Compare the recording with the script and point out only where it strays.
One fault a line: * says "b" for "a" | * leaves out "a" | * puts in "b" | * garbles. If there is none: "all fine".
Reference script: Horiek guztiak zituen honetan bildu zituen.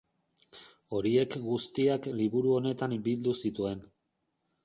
* says "liburu" for "zituen"